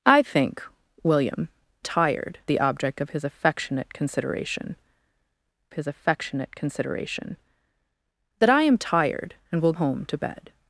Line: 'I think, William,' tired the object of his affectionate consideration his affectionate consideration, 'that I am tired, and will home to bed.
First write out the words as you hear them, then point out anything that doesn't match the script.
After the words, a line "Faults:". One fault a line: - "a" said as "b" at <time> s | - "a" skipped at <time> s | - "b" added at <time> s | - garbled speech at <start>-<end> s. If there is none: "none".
'I think, William,' tired the object of his affectionate consideration his affectionate consideration, 'that I am tired, and will home to bed.
Faults:
none